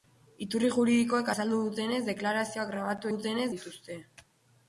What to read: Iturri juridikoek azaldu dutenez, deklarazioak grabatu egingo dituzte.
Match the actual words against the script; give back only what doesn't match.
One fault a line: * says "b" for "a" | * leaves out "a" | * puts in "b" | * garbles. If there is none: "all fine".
* says "dutenez" for "egingo"